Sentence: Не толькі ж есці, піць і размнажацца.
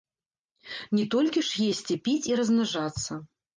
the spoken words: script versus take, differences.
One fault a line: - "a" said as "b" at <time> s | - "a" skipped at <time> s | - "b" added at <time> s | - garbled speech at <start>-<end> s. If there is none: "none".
none